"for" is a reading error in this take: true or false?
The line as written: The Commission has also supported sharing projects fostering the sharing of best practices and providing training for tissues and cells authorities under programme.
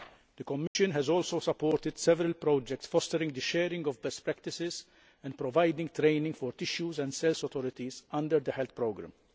false